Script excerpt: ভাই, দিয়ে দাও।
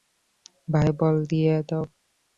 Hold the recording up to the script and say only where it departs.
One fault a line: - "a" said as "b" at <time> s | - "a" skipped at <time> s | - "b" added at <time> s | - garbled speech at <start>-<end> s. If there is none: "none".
- "বল" added at 1.0 s